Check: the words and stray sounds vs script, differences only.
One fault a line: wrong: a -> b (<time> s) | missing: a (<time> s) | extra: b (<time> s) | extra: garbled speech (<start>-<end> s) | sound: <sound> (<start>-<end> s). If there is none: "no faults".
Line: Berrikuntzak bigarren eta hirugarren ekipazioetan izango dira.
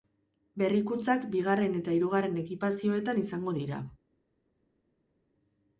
no faults